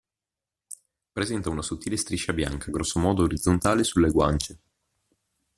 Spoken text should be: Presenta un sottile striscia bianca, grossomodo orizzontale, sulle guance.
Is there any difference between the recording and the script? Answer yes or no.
yes